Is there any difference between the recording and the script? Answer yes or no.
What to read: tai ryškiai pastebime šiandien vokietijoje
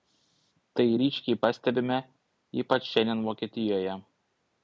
yes